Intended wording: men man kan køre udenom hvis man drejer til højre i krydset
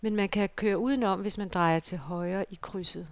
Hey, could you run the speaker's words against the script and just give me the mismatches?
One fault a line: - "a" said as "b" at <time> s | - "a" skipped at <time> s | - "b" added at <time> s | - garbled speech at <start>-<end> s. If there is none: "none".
none